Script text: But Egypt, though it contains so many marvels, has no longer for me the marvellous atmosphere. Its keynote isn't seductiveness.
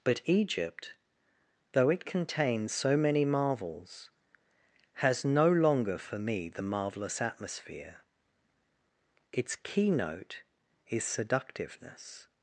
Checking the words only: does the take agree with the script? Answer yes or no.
no